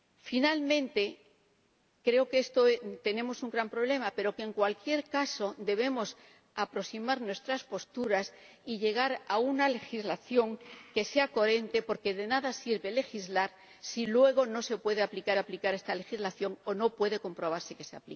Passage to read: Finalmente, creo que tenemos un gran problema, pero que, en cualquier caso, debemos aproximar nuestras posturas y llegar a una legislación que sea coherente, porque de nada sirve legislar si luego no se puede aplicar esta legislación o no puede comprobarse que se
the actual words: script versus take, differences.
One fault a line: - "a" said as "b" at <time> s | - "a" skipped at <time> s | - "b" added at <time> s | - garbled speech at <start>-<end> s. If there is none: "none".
- "aplicar" added at 15.4 s